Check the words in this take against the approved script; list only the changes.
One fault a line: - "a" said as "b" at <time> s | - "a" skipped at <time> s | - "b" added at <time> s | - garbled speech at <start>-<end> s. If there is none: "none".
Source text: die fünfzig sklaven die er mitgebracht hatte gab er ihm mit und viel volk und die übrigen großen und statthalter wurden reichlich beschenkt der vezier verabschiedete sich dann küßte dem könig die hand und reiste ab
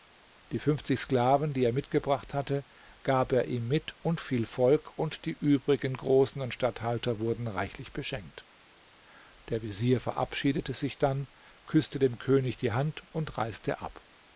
none